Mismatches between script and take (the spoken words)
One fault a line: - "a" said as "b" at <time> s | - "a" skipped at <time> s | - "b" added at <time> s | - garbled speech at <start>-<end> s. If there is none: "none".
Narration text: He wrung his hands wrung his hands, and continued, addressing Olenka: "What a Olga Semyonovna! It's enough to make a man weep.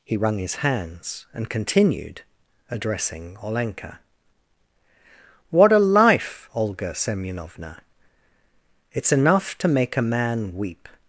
- "wrung his hands" skipped at 1.2 s
- "life" added at 5.8 s